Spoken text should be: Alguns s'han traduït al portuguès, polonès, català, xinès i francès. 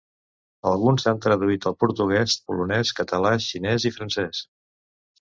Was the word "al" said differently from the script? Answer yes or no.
no